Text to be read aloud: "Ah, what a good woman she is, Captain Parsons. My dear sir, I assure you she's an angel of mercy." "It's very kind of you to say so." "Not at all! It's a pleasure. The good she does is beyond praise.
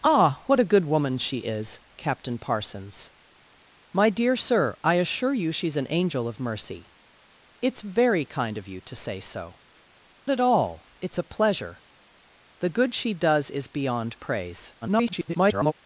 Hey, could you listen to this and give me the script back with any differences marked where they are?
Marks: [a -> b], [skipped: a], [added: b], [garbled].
"Ah, what a good woman she is, Captain Parsons. My dear sir, I assure you she's an angel of mercy." "It's very kind of you to say so." [skipped: "Not] at all! It's a pleasure. The good she does is beyond praise. [garbled]